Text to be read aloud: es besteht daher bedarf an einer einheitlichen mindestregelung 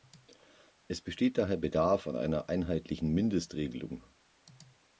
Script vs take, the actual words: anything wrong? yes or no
no